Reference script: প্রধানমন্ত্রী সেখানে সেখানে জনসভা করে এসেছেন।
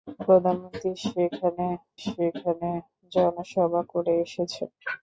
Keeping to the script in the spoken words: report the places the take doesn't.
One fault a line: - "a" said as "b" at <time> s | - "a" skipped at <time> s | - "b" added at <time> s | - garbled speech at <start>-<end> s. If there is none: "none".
none